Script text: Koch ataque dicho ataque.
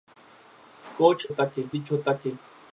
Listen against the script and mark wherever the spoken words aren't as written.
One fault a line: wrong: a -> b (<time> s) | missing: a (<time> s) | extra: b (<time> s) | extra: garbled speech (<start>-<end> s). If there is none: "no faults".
no faults